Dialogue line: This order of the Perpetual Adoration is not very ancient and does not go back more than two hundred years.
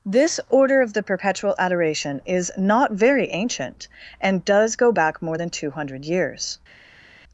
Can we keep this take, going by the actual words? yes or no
no